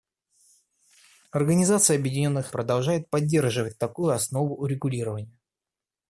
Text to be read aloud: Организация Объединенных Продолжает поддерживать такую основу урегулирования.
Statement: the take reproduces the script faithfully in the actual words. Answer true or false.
true